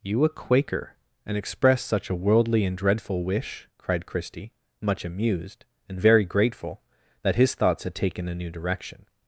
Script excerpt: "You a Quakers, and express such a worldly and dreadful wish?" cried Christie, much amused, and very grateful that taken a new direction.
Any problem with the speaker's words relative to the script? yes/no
yes